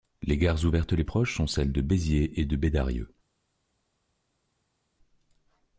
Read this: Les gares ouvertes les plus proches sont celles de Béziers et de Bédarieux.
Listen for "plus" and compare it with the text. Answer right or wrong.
wrong